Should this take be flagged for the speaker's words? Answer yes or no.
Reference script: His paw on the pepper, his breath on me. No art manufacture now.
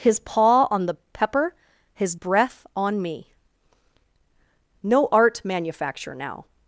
no